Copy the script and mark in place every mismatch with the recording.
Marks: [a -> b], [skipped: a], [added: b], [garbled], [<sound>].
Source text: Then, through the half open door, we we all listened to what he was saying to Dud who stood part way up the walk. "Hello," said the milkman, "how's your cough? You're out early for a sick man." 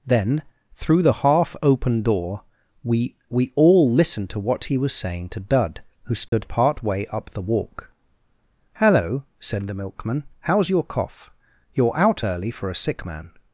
Then, through the half open door, we we all listened to what he was saying to Dud who stood [dropout] part way up the walk. "Hello," said the milkman, "how's your cough? You're out early for a sick man."